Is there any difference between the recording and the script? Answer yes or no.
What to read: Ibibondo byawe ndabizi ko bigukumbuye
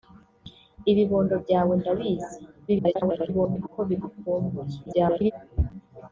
yes